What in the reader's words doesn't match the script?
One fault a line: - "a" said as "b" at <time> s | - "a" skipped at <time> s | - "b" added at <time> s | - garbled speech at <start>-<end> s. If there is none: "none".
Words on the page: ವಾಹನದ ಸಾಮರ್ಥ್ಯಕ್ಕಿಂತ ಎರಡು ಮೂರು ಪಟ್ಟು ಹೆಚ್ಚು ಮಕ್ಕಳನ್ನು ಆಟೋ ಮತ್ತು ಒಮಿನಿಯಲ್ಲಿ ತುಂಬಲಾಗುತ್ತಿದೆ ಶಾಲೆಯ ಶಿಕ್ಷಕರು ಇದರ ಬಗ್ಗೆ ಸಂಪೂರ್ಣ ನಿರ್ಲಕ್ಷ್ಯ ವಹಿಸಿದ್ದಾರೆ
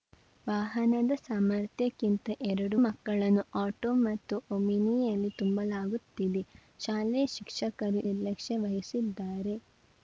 - "ಮೂರು ಪಟ್ಟು ಹೆಚ್ಚು" skipped at 2.8 s
- "ಇದರ ಬಗ್ಗೆ ಸಂಪೂರ್ಣ" skipped at 8.0 s